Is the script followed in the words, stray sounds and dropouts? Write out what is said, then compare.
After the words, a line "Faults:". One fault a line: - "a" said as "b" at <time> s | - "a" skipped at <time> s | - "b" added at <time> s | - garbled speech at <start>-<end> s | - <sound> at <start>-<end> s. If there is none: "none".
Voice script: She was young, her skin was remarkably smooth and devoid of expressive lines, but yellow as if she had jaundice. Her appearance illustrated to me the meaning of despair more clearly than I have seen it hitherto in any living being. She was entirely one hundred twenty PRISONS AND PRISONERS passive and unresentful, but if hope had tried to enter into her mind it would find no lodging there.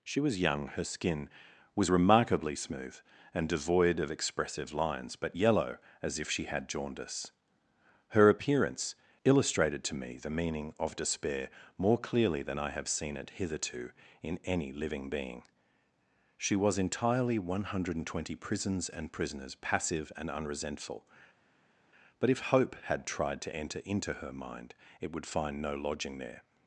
She was young, her skin was remarkably smooth and devoid of expressive lines, but yellow as if she had jaundice. Her appearance illustrated to me the meaning of despair more clearly than I have seen it hitherto in any living being. She was entirely one hundred twenty PRISONS AND PRISONERS passive and unresentful, but if hope had tried to enter into her mind it would find no lodging there.
Faults:
none